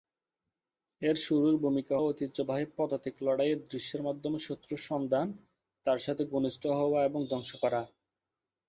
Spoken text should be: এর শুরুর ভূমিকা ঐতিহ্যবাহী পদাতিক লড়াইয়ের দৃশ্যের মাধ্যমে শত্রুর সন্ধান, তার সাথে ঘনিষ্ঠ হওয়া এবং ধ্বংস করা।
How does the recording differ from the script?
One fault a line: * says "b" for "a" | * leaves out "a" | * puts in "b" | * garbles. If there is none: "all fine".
all fine